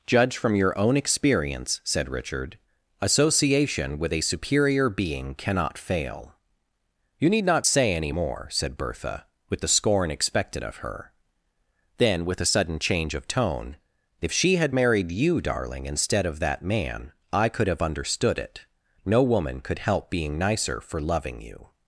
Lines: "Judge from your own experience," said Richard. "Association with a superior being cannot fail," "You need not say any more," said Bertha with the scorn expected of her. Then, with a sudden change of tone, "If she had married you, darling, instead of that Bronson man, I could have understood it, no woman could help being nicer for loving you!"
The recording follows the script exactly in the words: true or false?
false